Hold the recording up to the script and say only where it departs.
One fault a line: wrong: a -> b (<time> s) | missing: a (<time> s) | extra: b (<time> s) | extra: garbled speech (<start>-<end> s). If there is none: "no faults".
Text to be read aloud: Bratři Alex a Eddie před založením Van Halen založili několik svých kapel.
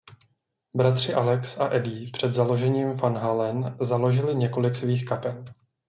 no faults